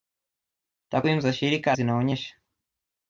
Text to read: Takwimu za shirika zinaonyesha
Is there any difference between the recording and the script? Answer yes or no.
no